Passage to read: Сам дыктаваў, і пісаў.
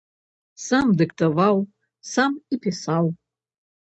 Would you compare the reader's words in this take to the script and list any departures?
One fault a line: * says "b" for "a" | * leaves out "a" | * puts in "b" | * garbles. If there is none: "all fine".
* puts in "сам"